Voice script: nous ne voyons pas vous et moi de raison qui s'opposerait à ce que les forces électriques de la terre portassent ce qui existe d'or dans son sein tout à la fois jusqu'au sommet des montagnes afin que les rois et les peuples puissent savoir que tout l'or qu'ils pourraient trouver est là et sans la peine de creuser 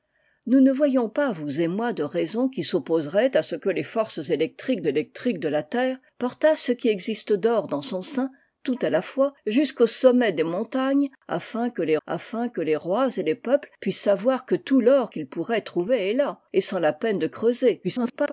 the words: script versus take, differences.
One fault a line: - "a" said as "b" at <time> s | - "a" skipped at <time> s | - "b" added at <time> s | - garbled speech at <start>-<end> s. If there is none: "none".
- "électriques" added at 4.9 s
- "afin que les" added at 12.1 s
- garbled speech at 17.8-18.3 s